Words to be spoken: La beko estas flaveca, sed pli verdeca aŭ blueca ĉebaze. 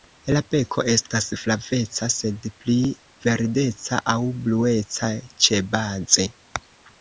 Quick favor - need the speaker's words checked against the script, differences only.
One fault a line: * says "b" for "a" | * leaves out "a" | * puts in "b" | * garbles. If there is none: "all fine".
all fine